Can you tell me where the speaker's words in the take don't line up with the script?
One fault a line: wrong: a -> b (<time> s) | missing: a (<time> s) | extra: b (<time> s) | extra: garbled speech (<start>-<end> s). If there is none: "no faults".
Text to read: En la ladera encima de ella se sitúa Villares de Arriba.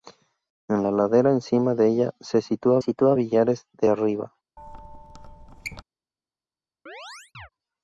extra: sitúa (2.8 s)